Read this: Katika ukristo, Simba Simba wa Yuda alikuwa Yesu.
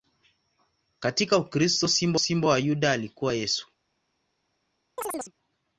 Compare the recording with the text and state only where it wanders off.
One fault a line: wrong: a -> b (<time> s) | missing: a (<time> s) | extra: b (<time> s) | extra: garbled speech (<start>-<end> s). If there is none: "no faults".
no faults